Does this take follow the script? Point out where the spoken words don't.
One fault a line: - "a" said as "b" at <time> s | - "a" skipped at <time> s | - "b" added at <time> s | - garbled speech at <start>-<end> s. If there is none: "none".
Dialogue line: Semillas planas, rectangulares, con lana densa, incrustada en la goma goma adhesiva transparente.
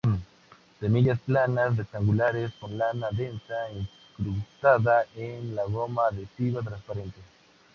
- "goma" skipped at 6.0 s